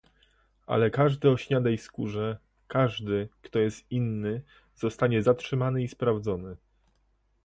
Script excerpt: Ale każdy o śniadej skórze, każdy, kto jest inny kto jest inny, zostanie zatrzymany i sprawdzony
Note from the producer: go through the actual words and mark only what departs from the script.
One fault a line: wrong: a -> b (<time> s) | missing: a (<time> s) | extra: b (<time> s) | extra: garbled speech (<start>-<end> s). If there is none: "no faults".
missing: kto jest inny (4.4 s)